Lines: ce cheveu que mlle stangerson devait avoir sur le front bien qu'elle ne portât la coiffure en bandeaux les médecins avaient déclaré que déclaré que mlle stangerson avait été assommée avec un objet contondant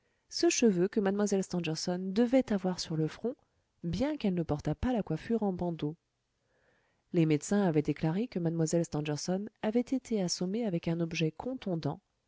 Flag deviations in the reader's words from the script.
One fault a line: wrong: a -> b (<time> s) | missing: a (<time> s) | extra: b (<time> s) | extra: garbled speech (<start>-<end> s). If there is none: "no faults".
extra: pas (4.7 s)
missing: déclaré que (8.4 s)